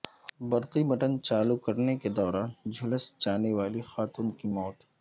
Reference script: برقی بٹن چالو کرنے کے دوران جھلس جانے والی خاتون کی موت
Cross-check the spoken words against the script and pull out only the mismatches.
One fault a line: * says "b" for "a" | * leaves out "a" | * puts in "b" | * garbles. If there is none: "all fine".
all fine